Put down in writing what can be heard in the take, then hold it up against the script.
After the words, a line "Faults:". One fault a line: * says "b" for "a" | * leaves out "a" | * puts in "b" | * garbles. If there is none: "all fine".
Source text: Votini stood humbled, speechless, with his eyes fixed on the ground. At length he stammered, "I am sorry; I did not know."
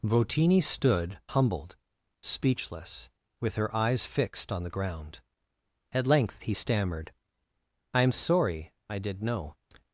Votini stood humbled, speechless, with her eyes fixed on the ground. At length he stammered, "I am sorry; I did know."
Faults:
* says "her" for "his"
* leaves out "not"